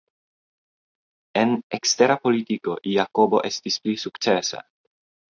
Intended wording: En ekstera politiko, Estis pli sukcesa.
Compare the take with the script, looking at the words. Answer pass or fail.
fail